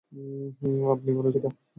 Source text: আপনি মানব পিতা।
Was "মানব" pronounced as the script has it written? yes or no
yes